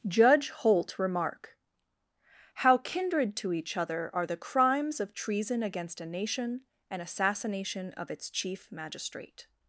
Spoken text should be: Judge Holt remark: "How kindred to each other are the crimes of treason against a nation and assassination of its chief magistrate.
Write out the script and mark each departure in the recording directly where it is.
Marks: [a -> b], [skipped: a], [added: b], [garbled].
Judge Holt remark: "How kindred to each other are the crimes of treason against a nation and assassination of its chief magistrate.